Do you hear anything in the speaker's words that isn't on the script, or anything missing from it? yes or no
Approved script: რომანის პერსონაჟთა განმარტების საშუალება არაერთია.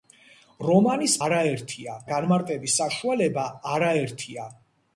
yes